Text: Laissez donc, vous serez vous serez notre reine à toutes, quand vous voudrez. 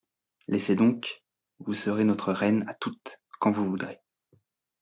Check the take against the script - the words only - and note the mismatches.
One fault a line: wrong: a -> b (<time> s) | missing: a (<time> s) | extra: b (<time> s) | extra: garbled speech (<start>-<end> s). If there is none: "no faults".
missing: vous serez (2.0 s)